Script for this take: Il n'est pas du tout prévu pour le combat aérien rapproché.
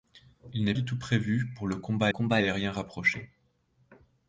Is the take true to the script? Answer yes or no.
no